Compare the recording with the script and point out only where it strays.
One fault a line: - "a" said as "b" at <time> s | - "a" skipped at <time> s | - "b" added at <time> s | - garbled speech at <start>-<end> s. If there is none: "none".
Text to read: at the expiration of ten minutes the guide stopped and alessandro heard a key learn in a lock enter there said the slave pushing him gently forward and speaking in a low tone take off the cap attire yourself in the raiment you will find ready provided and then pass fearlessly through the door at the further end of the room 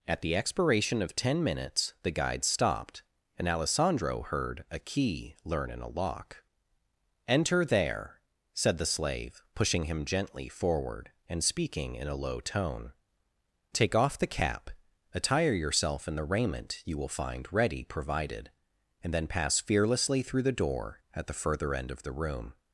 none